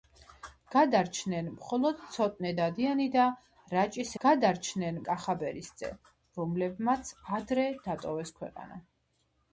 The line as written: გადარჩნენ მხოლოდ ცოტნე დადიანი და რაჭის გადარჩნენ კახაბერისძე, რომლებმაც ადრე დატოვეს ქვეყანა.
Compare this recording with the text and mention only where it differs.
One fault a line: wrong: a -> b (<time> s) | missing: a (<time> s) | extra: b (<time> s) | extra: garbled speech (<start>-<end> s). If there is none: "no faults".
no faults